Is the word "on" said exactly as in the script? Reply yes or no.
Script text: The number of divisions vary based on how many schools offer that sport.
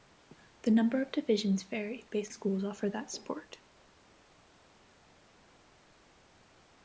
no